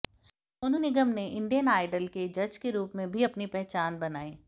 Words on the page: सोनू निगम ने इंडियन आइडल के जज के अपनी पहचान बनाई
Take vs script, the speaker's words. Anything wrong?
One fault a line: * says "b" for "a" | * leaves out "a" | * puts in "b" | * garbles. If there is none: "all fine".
* puts in "रूप में भी"